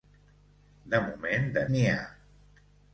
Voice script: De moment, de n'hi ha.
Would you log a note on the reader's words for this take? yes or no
no